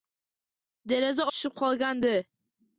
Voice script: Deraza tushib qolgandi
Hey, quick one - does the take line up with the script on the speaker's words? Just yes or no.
yes